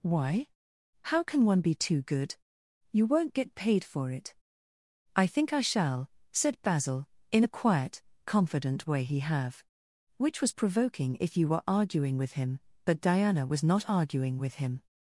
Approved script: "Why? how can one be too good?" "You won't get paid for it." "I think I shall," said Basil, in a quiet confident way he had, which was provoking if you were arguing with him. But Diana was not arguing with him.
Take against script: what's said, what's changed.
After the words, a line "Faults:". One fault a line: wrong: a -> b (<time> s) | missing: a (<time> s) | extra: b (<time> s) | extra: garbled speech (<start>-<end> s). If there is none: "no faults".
"Why? how can one be too good?" "You won't get paid for it." "I think I shall," said Basil, in a quiet confident way he have, which was provoking if you were arguing with him. But Diana was not arguing with him.
Faults:
wrong: had -> have (9.2 s)